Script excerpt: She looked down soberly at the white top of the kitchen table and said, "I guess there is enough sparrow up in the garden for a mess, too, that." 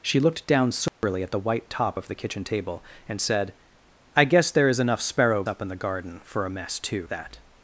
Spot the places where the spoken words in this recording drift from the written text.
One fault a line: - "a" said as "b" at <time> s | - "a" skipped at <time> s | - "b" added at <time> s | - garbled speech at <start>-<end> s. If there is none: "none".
none